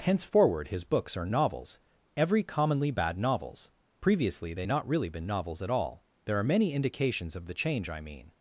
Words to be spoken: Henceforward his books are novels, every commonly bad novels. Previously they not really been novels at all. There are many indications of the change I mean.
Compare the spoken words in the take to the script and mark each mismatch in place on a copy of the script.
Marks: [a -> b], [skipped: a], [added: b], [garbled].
Henceforward his books are novels, every commonly bad novels. Previously they not really been novels at all. There are many indications of the change I mean.